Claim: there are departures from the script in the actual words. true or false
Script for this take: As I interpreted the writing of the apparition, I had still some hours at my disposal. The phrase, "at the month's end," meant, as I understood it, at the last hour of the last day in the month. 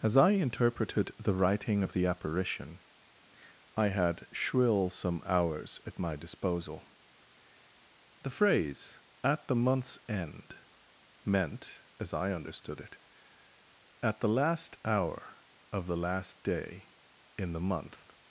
true